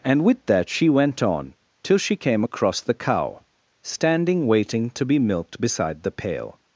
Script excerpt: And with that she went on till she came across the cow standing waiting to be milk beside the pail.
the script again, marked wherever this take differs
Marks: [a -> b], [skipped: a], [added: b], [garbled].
And with that she went on till she came across the cow standing waiting to be [milk -> milked] beside the pail.